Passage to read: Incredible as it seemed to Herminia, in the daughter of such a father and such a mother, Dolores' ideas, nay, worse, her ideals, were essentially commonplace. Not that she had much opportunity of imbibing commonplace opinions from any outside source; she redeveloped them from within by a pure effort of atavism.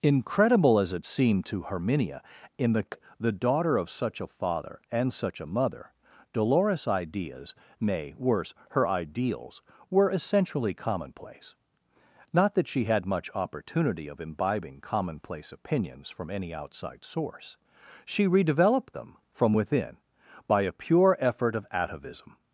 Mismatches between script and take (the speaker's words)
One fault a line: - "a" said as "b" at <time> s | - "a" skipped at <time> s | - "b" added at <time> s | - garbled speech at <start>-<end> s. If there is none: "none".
- "the" added at 3.2 s